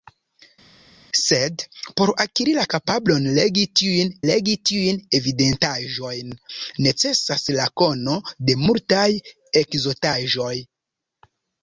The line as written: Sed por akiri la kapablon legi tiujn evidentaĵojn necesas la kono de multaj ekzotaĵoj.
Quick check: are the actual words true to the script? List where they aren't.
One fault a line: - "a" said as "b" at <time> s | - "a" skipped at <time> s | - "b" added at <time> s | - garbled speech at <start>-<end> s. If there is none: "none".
- "legi tiujn" added at 4.3 s